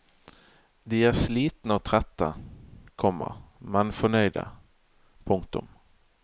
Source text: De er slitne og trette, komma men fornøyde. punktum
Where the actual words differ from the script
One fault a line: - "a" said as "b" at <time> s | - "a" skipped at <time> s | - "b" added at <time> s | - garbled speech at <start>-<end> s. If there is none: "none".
none